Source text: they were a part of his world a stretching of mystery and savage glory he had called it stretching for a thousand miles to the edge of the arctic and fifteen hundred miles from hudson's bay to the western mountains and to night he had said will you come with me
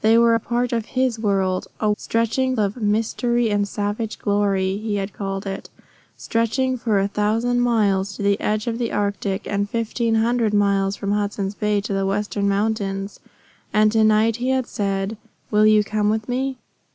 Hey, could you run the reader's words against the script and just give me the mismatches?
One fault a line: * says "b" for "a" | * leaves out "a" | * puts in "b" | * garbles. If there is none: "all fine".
all fine